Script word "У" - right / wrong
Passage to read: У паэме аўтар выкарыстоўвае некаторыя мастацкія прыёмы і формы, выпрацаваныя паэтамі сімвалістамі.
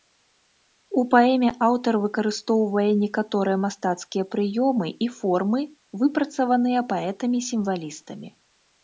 right